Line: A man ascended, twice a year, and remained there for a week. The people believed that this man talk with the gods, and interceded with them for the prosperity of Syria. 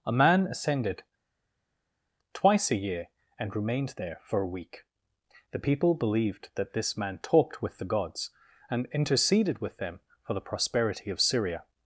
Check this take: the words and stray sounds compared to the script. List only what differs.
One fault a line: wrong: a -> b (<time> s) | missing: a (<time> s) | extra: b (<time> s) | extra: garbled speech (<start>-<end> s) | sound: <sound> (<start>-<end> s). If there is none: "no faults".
wrong: talk -> talked (7.2 s)